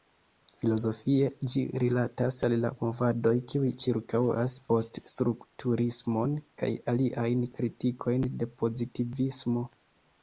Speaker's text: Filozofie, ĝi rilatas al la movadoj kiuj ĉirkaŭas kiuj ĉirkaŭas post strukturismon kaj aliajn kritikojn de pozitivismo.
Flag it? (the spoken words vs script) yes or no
yes